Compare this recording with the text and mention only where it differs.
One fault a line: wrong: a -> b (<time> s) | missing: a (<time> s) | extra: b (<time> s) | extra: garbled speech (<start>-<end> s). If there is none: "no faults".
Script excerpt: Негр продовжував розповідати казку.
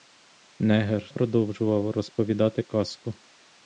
no faults